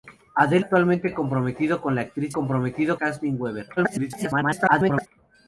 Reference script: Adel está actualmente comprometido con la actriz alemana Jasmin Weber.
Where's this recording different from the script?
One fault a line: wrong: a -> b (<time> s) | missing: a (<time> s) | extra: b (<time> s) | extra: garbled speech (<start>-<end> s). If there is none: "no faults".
missing: está (0.7 s)
wrong: alemana -> comprometido (2.3 s)
extra: garbled speech (3.8-5.1 s)